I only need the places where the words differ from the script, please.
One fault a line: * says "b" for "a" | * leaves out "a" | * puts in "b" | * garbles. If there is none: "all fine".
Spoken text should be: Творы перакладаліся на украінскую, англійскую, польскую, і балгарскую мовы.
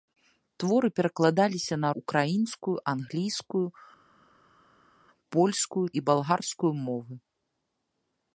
all fine